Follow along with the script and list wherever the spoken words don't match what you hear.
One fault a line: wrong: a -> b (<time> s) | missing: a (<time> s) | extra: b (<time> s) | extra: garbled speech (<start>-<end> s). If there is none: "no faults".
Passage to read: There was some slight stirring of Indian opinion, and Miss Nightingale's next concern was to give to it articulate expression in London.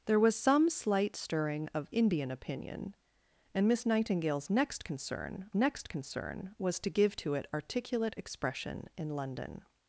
extra: next concern (5.5 s)